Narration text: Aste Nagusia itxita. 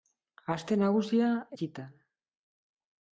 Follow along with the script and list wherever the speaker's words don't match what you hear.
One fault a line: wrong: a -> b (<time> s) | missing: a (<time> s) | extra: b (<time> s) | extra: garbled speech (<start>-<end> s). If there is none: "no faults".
no faults